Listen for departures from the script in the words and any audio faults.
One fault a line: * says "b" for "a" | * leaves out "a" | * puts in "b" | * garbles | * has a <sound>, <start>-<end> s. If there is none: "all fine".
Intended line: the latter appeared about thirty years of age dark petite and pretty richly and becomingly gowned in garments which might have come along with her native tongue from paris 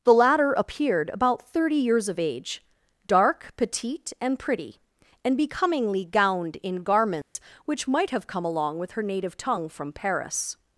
* leaves out "richly"
* has a dropout, 7.2-7.4 s